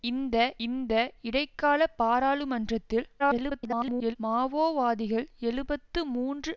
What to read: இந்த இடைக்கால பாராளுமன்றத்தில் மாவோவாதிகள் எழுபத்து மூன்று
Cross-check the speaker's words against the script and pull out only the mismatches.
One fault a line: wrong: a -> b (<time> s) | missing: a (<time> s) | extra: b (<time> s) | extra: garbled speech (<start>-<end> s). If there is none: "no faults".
extra: இந்த (0.6 s)
extra: garbled speech (3.2-4.2 s)